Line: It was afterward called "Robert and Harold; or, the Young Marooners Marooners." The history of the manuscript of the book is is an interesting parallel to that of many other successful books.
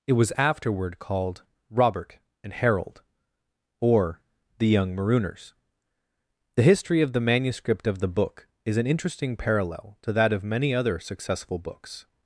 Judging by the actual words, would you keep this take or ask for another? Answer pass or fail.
fail